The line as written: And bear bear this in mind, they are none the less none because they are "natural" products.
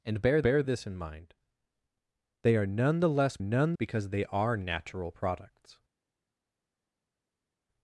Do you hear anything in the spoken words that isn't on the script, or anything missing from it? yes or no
no